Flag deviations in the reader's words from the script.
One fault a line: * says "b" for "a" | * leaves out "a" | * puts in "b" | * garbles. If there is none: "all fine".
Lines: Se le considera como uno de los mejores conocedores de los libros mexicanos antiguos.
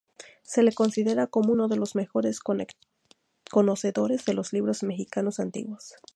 all fine